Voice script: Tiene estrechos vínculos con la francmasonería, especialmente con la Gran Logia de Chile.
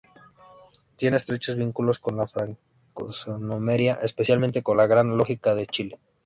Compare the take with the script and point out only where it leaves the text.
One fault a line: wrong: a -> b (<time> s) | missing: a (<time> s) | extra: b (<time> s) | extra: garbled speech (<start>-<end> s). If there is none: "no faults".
no faults